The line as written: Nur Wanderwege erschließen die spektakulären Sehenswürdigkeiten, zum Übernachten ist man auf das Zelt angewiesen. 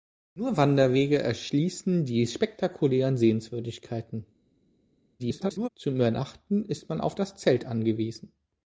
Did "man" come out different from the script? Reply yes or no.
no